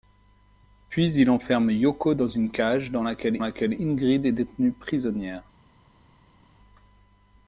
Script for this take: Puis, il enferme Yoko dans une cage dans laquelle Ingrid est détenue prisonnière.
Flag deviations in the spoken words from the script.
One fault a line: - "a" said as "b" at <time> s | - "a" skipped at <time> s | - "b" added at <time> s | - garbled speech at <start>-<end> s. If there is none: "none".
- "laquelle" added at 3.4 s